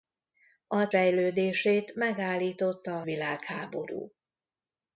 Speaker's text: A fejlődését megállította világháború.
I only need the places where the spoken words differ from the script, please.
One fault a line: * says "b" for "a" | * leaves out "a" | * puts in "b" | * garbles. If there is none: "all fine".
all fine